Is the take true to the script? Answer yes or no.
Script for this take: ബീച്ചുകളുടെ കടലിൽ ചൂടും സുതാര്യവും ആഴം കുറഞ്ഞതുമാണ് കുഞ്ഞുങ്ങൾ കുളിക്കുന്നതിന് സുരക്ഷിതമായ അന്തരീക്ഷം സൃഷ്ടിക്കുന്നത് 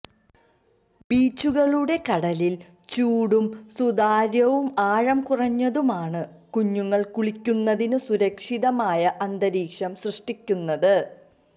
yes